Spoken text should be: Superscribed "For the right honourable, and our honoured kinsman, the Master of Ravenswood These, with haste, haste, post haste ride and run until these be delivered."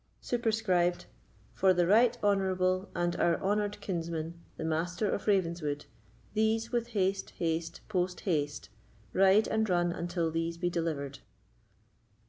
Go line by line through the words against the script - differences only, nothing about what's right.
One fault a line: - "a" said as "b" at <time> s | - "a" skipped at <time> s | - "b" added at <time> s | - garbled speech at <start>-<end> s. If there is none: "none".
none